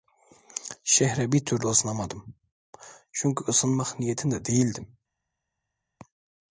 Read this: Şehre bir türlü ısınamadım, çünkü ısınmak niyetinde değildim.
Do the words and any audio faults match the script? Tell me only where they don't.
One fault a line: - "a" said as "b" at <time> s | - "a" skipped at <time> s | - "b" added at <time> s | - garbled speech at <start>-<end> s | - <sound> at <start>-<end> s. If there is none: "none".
none